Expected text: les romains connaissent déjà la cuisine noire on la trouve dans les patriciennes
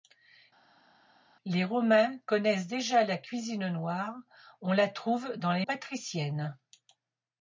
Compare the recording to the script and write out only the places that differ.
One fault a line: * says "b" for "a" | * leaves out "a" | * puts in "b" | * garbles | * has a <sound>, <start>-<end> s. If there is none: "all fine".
all fine